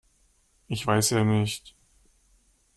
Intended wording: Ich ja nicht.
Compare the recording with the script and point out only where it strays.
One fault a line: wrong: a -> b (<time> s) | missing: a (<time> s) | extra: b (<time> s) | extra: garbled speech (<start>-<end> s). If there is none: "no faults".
extra: weiß (0.9 s)